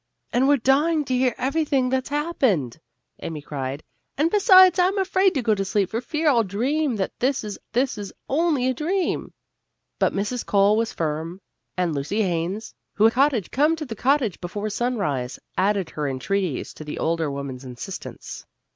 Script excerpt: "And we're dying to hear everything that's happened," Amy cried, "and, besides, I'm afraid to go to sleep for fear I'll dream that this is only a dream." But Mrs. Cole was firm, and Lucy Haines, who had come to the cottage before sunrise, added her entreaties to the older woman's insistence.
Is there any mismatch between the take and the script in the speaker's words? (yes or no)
yes